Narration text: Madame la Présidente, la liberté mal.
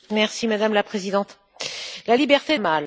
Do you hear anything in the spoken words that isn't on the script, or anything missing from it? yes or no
no